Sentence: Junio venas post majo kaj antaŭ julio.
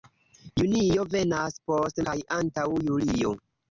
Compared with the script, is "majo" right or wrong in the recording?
wrong